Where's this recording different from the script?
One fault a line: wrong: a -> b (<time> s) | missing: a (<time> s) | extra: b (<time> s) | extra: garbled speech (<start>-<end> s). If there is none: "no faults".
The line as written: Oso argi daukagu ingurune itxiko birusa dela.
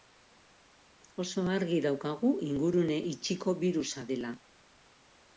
no faults